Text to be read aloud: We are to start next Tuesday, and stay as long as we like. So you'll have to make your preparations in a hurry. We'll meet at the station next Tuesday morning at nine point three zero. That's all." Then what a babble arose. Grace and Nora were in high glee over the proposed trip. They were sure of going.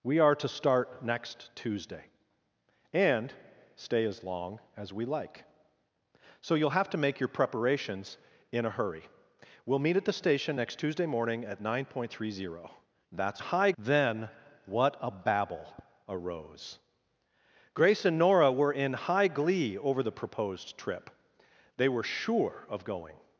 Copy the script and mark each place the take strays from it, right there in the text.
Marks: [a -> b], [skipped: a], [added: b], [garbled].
We are to start next Tuesday, and stay as long as we like. So you'll have to make your preparations in a hurry. We'll meet at the station next Tuesday morning at nine point three zero. That's [all." -> high] Then what a babble arose. Grace and Nora were in high glee over the proposed trip. They were sure of going.